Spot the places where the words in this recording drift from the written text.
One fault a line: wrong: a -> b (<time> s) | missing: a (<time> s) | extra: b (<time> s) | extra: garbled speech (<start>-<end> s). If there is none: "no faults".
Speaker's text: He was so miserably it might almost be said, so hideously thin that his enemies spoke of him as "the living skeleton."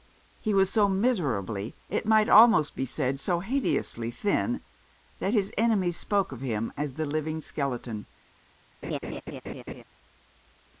no faults